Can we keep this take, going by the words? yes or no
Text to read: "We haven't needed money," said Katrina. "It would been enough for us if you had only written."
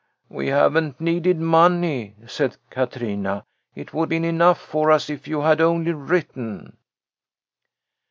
yes